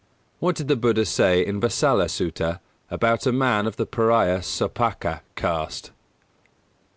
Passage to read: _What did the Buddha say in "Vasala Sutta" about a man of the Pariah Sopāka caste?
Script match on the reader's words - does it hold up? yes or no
yes